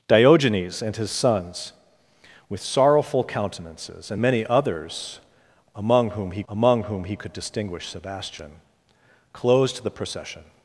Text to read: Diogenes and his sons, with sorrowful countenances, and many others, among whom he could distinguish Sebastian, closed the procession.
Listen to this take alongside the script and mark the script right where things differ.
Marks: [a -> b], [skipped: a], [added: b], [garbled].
Diogenes and his sons, with sorrowful countenances, and many others, among whom he [added: among whom he] could distinguish Sebastian, closed the procession.